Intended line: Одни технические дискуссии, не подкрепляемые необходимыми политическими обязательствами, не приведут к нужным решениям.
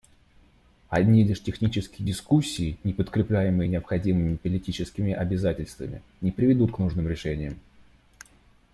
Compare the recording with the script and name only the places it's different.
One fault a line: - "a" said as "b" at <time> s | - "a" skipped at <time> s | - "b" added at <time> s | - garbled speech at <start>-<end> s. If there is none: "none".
- "лишь" added at 1.2 s